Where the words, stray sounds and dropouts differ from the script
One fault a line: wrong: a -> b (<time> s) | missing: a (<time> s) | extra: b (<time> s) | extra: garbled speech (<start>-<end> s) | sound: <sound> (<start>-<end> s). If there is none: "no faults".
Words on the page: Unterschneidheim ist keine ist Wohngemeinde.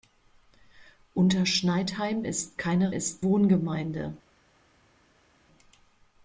no faults